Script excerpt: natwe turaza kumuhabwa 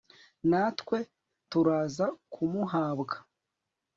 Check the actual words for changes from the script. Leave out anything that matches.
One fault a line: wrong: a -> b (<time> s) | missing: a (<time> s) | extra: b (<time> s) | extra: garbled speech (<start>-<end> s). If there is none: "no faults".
no faults